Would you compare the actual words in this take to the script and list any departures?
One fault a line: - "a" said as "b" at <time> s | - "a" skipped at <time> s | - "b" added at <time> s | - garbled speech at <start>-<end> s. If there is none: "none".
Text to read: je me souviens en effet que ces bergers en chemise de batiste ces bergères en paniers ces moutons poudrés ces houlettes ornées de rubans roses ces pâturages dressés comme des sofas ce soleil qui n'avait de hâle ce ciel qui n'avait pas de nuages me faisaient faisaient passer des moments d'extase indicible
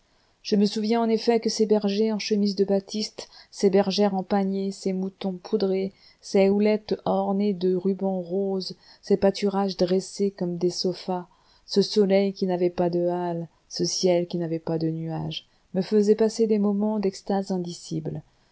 - "pas" added at 12.7 s
- "faisaient" skipped at 16.2 s